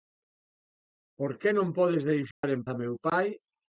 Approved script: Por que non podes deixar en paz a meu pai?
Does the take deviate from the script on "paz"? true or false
true